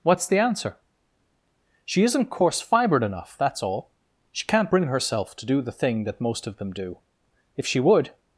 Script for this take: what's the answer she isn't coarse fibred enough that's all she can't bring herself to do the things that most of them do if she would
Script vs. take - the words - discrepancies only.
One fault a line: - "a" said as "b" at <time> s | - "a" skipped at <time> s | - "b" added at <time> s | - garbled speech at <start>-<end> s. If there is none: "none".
- "things" said as "thing" at 5.7 s